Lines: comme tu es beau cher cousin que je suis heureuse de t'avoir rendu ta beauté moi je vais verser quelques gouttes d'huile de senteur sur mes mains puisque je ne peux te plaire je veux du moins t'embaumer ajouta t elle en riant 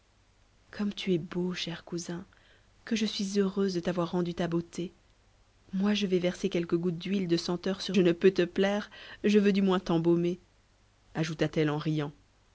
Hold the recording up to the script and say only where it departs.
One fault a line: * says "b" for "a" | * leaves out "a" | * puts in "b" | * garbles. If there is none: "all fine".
* leaves out "mes mains puisque"